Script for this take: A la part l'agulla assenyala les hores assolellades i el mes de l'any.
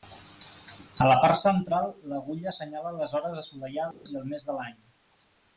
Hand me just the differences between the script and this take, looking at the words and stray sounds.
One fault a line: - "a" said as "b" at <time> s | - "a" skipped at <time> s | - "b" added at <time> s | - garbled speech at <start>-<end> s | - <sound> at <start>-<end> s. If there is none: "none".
- "central" added at 1.4 s
- dropout at 3.9-4.1 s